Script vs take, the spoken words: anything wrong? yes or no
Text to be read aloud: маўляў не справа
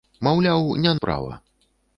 no